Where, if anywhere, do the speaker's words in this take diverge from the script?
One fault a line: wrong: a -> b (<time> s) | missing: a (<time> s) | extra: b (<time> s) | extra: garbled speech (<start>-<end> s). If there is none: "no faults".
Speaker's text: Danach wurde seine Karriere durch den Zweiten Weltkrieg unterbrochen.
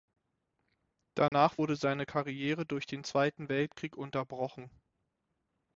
no faults